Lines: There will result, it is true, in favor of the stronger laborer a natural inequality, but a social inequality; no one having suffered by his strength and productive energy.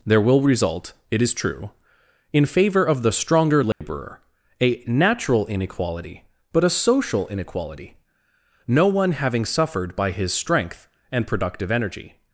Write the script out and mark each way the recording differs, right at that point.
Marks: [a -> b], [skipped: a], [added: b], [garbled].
There will result, it is true, in favor of the stronger laborer a natural inequality, but a social inequality; no one having suffered by his strength and productive energy.